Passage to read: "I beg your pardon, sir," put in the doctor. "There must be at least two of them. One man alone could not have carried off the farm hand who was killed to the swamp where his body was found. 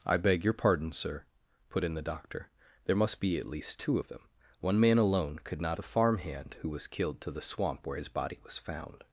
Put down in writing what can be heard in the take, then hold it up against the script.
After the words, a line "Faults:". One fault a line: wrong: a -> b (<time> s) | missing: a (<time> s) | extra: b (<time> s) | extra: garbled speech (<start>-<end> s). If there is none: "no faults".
"I beg your pardon, sir," put in the doctor. "There must be at least two of them. One man alone could not the farm hand who was killed to the swamp where his body was found.
Faults:
missing: have carried off (5.8 s)